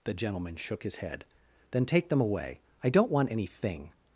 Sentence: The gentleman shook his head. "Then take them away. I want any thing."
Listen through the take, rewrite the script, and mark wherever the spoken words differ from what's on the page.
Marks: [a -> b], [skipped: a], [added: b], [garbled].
The gentleman shook his head. "Then take them away. I [added: don't] want any thing."